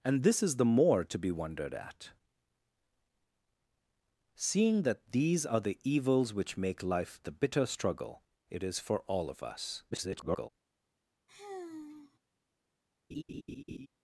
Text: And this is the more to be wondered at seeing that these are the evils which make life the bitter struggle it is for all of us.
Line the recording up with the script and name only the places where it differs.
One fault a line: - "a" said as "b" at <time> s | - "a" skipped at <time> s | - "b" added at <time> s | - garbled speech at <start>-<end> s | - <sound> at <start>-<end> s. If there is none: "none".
- garbled speech at 9.9-10.5 s
- sigh at 11.3-12.2 s
- laugh at 13.1-13.9 s